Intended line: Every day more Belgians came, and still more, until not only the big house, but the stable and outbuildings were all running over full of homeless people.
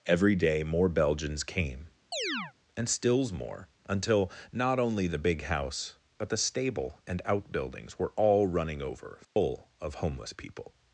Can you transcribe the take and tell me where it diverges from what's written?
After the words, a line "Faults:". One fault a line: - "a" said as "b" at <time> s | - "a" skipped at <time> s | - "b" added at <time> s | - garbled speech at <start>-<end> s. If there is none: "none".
Every day more Belgians came, and stills more, until not only the big house, but the stable and outbuildings were all running over full of homeless people.
Faults:
- "still" said as "stills" at 2.9 s